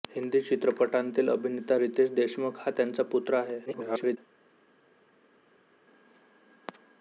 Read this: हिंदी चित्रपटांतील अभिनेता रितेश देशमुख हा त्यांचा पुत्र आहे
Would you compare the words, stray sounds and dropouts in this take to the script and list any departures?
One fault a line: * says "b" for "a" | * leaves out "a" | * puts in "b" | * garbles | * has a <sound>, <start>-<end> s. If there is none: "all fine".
* garbles